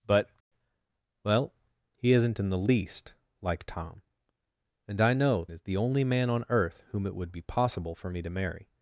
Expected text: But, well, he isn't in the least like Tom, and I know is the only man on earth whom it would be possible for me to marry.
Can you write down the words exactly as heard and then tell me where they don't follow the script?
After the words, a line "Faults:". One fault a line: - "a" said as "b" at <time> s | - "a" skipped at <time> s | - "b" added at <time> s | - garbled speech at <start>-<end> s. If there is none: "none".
But, well, he isn't in the least like Tom, and I know is the only man on earth whom it would be possible for me to marry.
Faults:
none